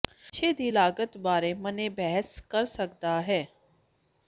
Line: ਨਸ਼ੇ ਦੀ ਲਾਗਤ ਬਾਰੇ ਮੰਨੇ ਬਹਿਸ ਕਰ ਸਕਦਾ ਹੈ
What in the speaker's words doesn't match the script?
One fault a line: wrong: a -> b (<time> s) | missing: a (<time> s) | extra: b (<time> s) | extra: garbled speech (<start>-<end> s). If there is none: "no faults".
no faults